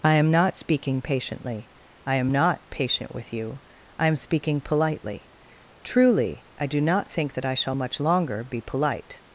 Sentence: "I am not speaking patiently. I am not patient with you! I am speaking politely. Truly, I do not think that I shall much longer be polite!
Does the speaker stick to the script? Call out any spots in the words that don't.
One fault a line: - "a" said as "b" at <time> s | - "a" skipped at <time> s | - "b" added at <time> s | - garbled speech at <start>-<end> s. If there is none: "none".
none